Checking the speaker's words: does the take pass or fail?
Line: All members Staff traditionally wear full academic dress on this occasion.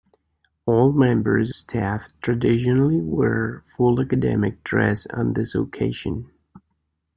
pass